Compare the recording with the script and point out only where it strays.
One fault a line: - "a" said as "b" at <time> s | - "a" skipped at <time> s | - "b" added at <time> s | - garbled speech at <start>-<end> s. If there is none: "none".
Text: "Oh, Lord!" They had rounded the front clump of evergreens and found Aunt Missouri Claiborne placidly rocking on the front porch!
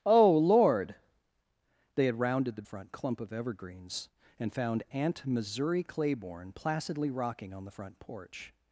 none